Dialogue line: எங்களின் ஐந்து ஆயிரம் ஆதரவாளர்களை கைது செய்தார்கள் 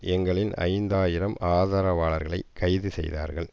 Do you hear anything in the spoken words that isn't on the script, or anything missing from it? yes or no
no